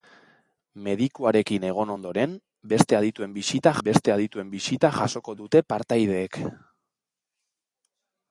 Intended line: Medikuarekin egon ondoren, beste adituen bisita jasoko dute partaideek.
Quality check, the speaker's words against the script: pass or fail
fail